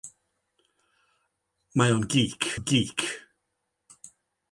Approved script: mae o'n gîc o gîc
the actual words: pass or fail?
pass